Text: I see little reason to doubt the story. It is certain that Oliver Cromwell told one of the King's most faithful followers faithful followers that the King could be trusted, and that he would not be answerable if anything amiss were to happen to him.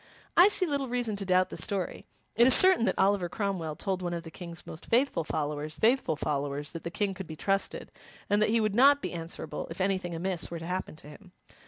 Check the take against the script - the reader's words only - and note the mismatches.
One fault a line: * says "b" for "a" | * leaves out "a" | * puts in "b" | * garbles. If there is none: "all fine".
all fine